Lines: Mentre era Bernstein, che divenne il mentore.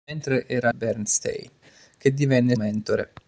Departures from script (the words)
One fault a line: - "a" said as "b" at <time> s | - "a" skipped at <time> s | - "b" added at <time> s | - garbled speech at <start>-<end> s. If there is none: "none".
none